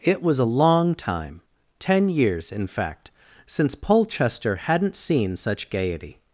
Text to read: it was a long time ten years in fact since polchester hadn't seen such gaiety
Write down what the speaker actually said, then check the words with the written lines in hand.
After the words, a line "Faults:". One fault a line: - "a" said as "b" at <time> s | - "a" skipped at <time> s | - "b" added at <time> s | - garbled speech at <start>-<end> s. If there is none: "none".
it was a long time ten years in fact since polchester hadn't seen such gaiety
Faults:
none